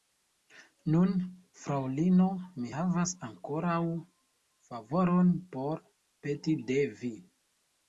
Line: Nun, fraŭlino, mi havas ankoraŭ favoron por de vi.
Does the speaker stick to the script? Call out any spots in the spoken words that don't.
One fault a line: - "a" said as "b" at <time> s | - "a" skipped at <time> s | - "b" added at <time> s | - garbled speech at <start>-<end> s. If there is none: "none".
- "peti" added at 6.3 s